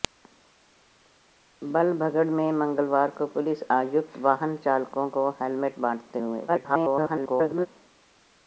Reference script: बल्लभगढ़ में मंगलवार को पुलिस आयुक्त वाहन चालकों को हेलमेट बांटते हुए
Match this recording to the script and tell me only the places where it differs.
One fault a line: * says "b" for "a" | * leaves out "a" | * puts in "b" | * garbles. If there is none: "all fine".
* garbles